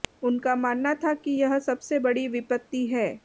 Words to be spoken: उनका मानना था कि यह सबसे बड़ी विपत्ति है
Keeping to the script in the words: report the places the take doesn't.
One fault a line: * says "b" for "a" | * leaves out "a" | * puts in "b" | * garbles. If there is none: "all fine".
all fine